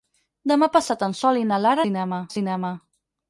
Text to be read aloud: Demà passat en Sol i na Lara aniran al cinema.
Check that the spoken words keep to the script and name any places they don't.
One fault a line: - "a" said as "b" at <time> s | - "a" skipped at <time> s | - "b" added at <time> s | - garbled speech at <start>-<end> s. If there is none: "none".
- "aniran" said as "cinema" at 1.8 s